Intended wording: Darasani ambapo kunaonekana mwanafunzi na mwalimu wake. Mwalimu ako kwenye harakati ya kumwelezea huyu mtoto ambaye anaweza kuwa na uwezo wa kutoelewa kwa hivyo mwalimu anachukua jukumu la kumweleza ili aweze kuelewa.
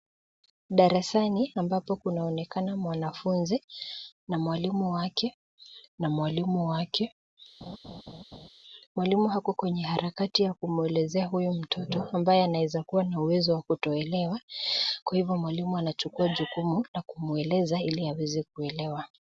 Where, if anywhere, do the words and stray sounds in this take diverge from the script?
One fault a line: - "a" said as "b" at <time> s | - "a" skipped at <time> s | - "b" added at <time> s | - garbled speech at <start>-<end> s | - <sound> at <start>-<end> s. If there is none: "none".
- "na mwalimu wake" added at 6.0 s
- laugh at 7.6-8.5 s